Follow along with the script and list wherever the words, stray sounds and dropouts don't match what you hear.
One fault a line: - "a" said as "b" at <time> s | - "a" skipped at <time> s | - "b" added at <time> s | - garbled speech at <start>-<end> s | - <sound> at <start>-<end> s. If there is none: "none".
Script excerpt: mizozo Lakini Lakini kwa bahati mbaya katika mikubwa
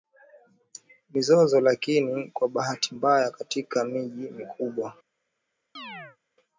- "Lakini" skipped at 2.3 s
- "miji" added at 3.9 s
- chirp at 5.8-6.2 s